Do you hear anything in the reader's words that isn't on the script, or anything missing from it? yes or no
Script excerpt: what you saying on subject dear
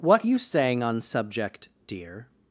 no